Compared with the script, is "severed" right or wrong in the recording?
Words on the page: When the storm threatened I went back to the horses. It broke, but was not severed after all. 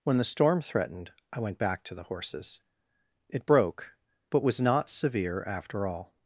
wrong